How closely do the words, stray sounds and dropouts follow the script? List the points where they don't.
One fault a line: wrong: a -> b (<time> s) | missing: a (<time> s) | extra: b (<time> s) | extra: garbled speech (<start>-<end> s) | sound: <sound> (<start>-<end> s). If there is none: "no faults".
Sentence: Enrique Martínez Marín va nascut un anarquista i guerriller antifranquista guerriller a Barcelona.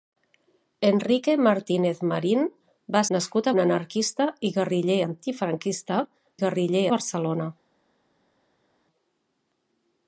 no faults